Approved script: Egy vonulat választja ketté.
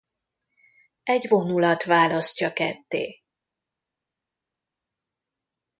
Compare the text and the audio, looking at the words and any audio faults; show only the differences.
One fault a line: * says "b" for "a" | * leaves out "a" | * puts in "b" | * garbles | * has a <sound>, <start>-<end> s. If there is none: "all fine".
all fine